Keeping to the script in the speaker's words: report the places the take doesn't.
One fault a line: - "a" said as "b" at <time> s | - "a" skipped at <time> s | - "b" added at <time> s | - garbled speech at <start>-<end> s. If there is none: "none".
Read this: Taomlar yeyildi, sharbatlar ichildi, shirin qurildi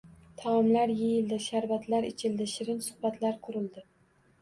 - "suhbatlar" added at 2.9 s